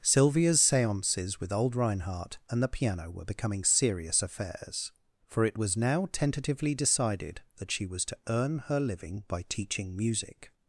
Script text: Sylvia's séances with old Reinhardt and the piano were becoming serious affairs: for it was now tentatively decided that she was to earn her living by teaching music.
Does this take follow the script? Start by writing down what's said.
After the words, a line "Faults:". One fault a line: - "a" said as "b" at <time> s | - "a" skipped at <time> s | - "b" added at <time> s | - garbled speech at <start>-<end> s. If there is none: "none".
Sylvia's séances with old Reinhardt and the piano were becoming serious affairs: for it was now tentatively decided that she was to earn her living by teaching music.
Faults:
none